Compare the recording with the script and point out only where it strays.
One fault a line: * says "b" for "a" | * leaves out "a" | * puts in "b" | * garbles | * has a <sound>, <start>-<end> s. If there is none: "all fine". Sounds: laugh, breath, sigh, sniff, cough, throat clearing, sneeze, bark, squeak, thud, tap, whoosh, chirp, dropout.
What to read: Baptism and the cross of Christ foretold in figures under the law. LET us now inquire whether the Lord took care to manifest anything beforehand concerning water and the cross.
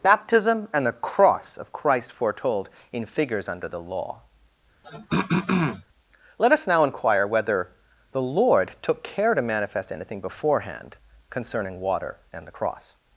* has a throat clearing, 4.8-5.8 s